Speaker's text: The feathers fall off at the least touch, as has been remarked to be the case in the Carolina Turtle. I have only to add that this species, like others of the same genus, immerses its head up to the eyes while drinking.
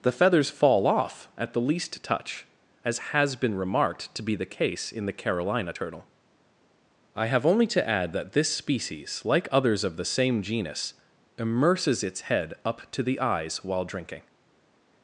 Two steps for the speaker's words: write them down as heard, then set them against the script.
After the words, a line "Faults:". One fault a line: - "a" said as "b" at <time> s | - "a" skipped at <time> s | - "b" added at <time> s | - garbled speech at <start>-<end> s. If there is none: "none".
The feathers fall off at the least touch, as has been remarked to be the case in the Carolina Turtle. I have only to add that this species, like others of the same genus, immerses its head up to the eyes while drinking.
Faults:
none